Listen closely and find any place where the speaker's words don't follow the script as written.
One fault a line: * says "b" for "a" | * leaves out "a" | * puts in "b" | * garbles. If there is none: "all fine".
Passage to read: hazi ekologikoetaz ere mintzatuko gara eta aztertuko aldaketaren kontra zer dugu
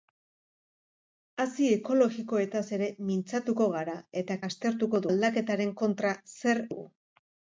all fine